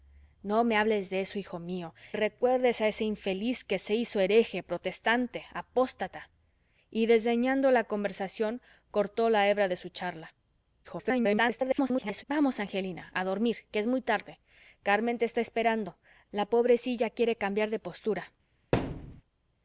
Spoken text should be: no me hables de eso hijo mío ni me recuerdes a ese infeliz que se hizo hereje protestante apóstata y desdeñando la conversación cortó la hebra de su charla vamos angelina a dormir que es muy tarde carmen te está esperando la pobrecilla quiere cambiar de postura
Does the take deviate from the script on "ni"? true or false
true